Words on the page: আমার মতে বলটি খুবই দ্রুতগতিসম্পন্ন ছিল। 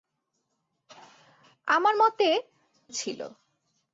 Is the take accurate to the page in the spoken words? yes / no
no